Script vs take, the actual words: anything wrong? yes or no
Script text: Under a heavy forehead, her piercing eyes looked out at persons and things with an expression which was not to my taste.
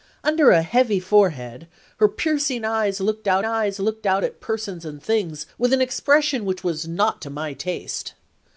yes